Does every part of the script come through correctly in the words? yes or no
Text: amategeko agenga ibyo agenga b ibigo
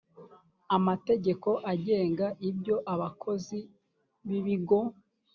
no